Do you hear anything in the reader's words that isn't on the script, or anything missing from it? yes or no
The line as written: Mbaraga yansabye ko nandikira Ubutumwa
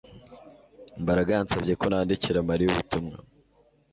yes